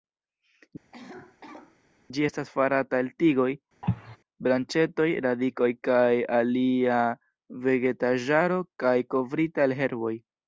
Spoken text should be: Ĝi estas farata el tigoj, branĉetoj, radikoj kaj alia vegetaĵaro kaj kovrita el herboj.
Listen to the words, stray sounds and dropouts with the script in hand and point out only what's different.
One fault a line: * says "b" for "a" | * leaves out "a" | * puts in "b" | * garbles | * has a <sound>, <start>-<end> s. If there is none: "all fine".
* has a cough, 0.9-1.8 s
* has a cough, 3.8-4.2 s